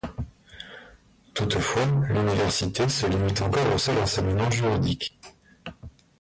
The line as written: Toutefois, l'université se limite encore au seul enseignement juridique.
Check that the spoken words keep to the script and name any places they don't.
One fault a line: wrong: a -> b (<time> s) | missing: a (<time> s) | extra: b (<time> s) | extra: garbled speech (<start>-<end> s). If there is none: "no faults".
no faults